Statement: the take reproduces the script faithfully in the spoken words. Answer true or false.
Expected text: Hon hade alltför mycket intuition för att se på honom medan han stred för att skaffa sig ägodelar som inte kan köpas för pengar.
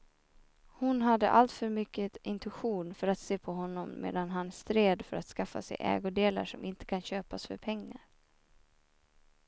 true